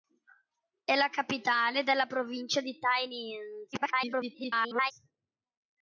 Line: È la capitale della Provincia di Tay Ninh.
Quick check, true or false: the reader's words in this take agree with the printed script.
false